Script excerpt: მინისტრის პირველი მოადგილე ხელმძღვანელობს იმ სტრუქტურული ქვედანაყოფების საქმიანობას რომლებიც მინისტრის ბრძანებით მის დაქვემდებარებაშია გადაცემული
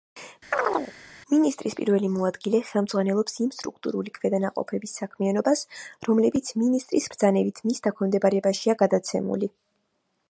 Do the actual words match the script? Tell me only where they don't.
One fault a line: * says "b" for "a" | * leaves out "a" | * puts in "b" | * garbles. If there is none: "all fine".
all fine